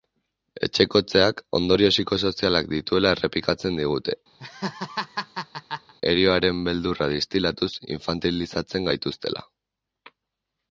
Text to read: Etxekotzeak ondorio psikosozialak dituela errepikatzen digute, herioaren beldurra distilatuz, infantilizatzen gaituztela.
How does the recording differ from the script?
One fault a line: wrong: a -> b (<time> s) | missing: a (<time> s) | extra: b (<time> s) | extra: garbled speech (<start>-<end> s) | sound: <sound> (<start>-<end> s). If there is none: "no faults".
sound: laugh (4.4-5.9 s)